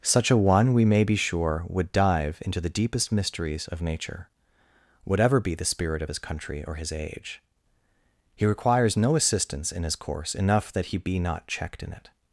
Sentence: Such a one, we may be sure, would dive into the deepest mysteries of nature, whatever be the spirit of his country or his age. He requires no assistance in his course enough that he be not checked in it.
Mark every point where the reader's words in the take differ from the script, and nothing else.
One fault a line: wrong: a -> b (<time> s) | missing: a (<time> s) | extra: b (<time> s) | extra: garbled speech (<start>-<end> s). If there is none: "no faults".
no faults